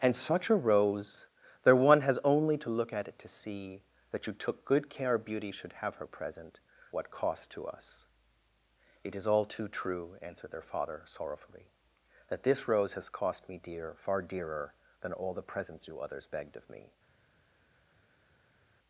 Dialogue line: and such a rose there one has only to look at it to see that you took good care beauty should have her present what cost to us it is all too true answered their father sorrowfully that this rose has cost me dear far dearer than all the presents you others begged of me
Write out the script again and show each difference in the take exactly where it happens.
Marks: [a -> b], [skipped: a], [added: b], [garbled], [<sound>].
and such a rose there one has only to look at it to see that you took good care beauty should have her present what cost to us it is all too true answered their father sorrowfully that this rose has cost me dear far dearer than all the presents you others begged of me